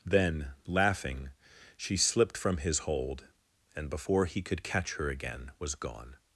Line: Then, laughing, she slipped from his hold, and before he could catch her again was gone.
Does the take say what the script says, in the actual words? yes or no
yes